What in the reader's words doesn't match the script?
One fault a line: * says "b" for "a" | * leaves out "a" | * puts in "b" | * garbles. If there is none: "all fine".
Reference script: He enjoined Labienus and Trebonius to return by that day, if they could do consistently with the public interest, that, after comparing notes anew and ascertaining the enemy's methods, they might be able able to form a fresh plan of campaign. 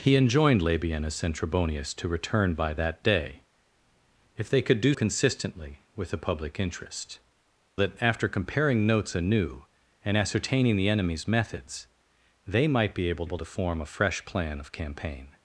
all fine